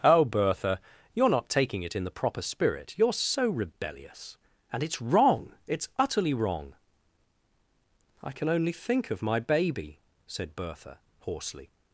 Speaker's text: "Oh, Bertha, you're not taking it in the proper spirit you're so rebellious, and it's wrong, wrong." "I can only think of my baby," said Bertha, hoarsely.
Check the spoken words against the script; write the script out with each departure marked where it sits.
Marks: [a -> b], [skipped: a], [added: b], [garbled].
"Oh, Bertha, you're not taking it in the proper spirit you're so rebellious, and it's wrong, [added: it's utterly] wrong." "I can only think of my baby," said Bertha, hoarsely.